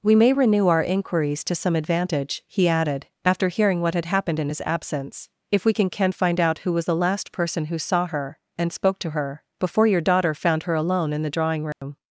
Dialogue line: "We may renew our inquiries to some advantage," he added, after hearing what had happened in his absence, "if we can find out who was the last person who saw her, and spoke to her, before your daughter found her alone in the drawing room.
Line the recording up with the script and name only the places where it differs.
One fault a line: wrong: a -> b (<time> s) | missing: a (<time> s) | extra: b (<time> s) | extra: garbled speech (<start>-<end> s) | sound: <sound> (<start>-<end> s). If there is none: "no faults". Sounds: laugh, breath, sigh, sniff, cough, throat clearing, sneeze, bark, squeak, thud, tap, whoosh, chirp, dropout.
extra: can (5.9 s)
sound: dropout (11.7-11.8 s)